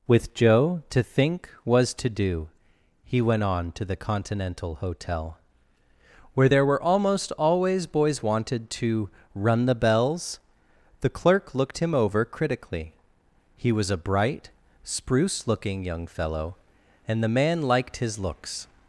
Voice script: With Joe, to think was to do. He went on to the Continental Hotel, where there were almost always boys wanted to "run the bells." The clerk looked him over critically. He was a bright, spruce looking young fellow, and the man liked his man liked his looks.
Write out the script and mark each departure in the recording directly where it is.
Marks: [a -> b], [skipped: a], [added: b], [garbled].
With Joe, to think was to do. He went on to the Continental Hotel, where there were almost always boys wanted to "run the bells." The clerk looked him over critically. He was a bright, spruce looking young fellow, and the man liked his [skipped: man liked his] looks.